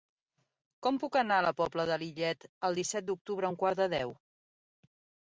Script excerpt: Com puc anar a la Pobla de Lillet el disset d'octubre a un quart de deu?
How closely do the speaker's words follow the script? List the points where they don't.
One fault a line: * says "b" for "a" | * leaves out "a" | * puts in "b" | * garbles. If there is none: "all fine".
all fine